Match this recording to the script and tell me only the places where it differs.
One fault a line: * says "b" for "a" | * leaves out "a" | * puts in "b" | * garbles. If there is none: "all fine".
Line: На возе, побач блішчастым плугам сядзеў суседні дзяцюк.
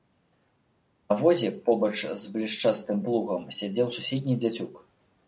* puts in "з"